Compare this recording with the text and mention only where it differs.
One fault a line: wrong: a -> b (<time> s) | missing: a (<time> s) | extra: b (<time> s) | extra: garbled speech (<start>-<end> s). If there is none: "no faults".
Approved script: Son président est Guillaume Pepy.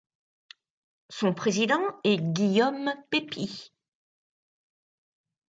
no faults